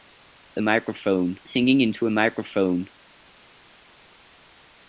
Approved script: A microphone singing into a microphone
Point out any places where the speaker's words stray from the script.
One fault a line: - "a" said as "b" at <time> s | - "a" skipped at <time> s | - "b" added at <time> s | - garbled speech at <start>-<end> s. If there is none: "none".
none